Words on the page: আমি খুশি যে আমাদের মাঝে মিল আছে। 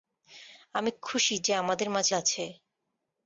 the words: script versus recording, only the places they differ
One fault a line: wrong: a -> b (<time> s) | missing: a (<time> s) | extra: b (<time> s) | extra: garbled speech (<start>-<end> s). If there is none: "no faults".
missing: মিল (2.1 s)